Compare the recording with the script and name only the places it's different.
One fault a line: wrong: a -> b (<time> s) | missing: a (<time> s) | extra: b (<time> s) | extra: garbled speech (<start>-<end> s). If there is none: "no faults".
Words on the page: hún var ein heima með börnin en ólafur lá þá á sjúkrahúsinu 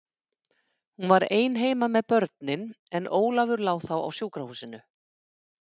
no faults